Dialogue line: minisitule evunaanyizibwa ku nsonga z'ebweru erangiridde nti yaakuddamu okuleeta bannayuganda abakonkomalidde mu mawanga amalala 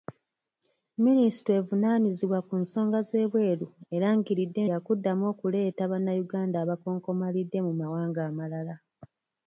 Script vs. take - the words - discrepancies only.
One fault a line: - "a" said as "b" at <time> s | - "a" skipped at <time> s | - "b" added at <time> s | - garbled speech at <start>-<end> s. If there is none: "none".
- "nti" skipped at 4.6 s